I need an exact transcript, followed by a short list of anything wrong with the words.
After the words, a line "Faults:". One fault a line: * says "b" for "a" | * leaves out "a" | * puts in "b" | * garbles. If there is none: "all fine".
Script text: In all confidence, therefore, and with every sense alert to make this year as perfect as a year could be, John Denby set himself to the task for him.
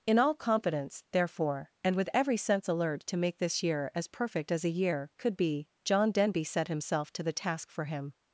In all confidence, therefore, and with every sense alert to make this year as perfect as a year could be, John Denby set himself to the task for him.
Faults:
all fine